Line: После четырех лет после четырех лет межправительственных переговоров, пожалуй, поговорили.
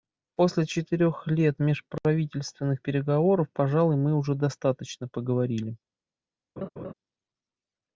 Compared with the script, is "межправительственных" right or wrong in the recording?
wrong